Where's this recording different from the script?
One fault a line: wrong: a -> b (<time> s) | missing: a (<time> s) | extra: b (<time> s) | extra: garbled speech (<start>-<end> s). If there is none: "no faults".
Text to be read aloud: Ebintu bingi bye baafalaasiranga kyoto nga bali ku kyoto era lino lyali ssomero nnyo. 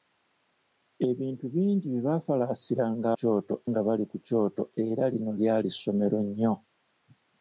no faults